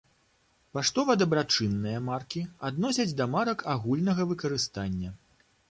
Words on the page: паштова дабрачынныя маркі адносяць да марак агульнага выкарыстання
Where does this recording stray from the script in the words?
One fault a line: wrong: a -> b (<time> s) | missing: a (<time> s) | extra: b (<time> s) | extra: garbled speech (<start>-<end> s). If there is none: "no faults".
no faults